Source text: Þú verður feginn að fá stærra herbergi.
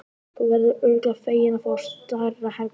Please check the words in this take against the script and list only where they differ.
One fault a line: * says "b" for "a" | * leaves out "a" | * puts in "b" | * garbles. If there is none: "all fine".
* puts in "örugglega"